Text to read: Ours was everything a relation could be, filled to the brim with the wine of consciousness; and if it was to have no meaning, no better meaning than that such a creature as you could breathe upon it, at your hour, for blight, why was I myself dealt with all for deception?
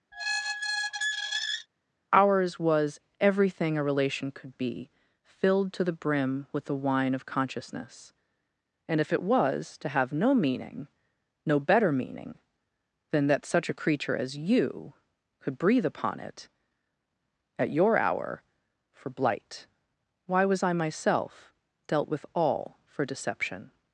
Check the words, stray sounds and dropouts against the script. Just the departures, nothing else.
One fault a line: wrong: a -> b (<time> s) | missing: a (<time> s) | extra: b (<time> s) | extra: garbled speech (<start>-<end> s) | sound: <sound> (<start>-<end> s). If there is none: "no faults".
sound: squeak (0.1-1.7 s)